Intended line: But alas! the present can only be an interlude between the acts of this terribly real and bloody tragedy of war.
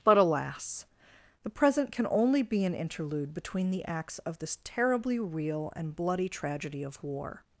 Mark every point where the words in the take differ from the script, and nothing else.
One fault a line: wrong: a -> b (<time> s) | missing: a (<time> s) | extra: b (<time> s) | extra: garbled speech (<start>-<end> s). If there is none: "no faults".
no faults